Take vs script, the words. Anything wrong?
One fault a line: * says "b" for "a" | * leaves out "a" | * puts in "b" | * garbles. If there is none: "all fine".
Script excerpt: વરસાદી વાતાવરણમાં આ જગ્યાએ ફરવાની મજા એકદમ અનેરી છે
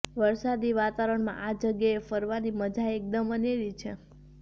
all fine